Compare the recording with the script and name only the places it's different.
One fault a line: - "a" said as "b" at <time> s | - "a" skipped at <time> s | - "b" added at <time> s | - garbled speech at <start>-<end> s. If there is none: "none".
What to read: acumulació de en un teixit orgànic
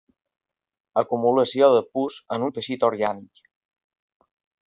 - "pus" added at 2.0 s